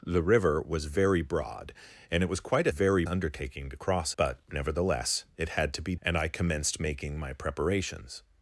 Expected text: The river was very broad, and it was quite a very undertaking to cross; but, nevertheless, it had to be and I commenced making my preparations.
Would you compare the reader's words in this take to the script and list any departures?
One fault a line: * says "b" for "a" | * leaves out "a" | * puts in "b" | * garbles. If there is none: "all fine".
all fine